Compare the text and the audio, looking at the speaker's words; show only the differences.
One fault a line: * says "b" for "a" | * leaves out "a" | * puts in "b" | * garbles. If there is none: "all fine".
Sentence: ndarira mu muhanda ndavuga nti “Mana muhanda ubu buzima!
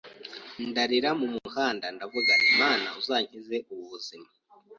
* says "uzankize" for "muhanda"